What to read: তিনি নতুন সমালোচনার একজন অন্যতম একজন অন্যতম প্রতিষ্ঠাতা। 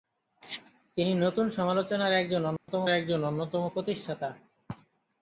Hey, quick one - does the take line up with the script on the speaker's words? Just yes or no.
yes